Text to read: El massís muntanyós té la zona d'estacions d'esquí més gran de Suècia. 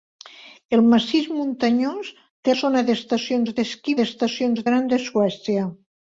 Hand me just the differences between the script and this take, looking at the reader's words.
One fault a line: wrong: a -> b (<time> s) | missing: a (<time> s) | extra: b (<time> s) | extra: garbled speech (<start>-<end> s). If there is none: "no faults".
missing: la (2.6 s)
wrong: més -> d'estacions (4.0 s)